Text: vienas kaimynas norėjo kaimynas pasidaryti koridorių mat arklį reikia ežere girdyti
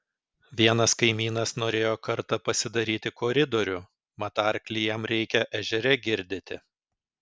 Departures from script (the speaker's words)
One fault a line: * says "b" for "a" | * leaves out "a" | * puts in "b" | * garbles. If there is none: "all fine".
* says "kartą" for "kaimynas"
* puts in "jam"